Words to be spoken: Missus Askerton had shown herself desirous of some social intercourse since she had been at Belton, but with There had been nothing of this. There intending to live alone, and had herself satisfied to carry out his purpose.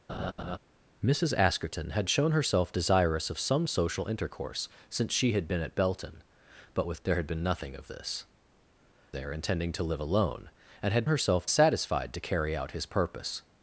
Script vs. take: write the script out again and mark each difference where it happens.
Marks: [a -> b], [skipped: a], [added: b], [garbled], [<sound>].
[laugh] Missus Askerton had shown herself desirous of some social intercourse since she had been at Belton, but with There had been nothing of this. There intending to live alone, and had herself satisfied to carry out his purpose.